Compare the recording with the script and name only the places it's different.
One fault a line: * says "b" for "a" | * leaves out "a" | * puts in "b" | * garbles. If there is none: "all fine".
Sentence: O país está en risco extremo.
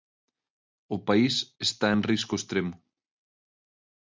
all fine